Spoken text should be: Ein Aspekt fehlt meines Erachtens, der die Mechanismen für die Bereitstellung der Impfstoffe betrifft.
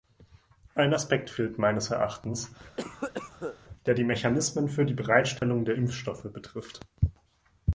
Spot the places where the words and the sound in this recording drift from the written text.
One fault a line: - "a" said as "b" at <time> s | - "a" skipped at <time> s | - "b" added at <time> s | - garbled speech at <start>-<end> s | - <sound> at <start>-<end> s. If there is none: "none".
- cough at 2.8-3.6 s
- dropout at 5.4-5.4 s